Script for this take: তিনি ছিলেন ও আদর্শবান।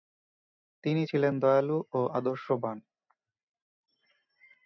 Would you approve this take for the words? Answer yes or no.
no